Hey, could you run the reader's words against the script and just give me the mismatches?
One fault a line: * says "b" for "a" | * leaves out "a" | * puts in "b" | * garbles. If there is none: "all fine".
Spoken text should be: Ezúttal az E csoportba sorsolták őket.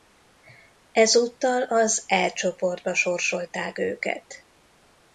all fine